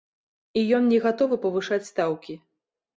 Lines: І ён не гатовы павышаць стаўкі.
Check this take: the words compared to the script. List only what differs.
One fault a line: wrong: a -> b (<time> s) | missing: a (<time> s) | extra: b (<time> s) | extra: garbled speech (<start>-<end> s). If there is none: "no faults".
no faults